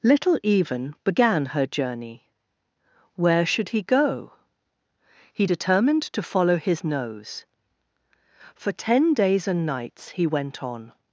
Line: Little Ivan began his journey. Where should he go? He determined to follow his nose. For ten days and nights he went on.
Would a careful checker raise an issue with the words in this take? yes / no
yes